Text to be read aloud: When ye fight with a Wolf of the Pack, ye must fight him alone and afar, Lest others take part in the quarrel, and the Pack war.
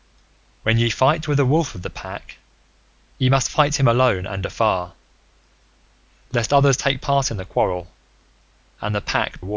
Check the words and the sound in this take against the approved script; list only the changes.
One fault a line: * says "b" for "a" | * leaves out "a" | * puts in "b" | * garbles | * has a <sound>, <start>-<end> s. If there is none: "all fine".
all fine